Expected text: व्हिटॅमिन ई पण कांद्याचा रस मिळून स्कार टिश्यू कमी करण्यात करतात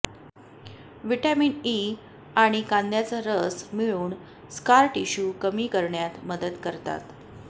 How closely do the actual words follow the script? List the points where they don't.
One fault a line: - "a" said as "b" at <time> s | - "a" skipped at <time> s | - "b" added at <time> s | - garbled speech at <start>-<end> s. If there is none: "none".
- "पण" said as "आणि" at 2.4 s
- "मदत" added at 6.3 s